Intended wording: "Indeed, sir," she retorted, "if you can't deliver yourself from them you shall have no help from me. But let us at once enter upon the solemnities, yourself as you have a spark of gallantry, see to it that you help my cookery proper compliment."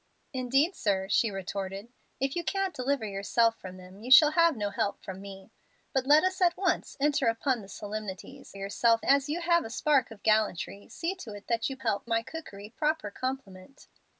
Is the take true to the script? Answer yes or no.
yes